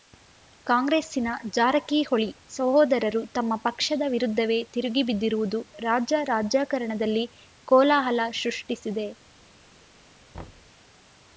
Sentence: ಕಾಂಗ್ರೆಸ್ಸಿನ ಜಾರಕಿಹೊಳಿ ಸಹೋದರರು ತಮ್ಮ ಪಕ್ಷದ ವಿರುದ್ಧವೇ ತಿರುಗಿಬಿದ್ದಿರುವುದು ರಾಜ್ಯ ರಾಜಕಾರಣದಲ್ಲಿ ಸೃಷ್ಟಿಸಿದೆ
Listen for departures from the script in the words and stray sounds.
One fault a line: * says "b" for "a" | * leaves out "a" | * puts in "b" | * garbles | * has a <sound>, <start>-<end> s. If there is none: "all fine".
* puts in "ಕೋಲಾಹಲ"
* has a thud, 10.3-10.7 s